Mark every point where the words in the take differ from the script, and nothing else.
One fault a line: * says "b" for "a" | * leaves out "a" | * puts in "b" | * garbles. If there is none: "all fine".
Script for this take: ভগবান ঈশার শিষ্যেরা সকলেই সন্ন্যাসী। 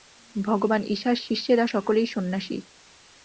all fine